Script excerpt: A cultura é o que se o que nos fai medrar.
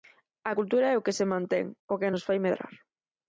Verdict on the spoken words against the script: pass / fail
fail